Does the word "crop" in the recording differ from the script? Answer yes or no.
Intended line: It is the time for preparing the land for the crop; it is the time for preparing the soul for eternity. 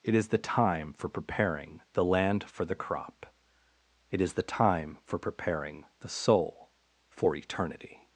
no